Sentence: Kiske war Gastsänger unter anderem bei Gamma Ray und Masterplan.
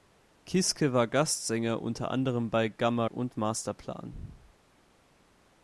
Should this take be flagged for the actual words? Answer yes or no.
yes